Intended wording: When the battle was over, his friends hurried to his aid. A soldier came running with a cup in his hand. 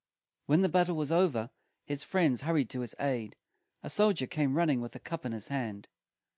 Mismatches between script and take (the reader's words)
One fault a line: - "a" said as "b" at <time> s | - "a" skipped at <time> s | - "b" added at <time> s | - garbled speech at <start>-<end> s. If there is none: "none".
none